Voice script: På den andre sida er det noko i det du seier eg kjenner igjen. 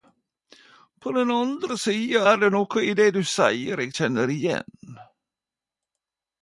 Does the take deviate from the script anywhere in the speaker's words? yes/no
no